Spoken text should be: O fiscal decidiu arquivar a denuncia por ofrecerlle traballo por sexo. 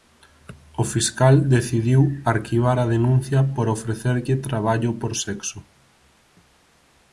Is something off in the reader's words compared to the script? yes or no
no